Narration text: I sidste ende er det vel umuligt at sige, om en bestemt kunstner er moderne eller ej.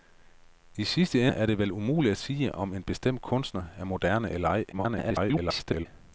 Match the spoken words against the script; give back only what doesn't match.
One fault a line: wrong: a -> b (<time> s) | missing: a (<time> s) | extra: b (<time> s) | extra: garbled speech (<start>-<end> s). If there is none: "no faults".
missing: ende (1.3 s)
extra: garbled speech (4.7-5.9 s)